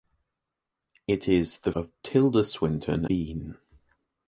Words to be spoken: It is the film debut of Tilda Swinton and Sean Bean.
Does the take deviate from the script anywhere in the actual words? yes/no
yes